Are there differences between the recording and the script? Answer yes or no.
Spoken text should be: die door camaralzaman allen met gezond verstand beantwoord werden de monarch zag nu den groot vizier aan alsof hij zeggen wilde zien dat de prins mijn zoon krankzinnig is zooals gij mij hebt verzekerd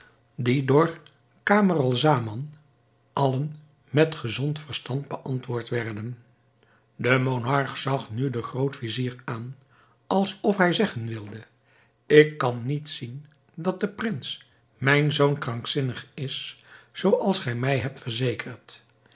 yes